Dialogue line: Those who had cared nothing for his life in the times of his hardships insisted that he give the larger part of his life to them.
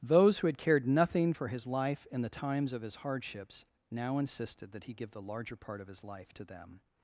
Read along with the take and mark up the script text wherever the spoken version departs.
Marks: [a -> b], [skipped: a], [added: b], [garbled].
Those who had cared nothing for his life in the times of his hardships [added: now] insisted that he give the larger part of his life to them.